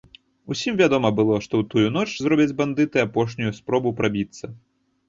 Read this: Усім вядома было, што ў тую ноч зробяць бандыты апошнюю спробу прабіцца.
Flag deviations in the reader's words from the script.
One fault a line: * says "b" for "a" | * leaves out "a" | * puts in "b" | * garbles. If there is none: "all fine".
all fine